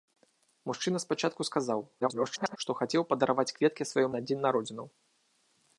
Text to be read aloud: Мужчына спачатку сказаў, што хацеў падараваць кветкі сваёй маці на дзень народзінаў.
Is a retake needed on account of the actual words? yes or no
yes